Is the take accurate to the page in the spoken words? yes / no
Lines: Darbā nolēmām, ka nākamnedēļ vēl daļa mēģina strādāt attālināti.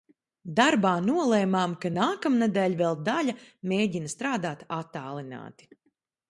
yes